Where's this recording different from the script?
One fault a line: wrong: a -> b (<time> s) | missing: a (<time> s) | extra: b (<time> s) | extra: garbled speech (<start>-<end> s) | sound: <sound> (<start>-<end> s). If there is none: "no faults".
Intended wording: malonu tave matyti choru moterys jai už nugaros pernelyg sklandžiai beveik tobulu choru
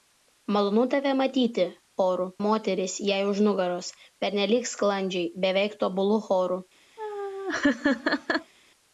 sound: laugh (7.0-8.5 s)